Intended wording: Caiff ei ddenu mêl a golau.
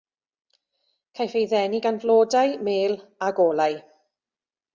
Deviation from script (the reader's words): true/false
true